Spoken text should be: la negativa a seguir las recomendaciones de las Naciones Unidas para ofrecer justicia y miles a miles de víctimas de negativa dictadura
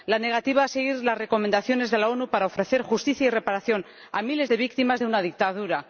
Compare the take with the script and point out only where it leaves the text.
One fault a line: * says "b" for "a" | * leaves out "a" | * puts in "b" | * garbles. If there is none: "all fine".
* says "reparación" for "miles"
* says "una" for "negativa"